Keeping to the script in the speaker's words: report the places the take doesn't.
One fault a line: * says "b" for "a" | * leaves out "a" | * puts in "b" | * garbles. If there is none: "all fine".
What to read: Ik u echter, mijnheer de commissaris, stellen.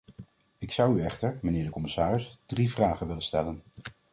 * puts in "zou"
* puts in "drie vragen willen"